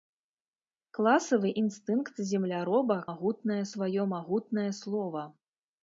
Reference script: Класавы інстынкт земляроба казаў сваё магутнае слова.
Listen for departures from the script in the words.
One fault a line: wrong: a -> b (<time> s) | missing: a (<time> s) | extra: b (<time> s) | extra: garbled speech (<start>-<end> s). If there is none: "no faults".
wrong: казаў -> магутнае (3.1 s)